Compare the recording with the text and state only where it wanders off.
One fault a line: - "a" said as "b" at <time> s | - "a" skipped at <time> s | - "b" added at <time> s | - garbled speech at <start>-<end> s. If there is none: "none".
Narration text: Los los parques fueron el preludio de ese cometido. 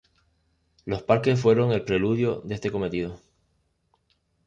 - "los" skipped at 1.0 s
- "ese" said as "este" at 2.5 s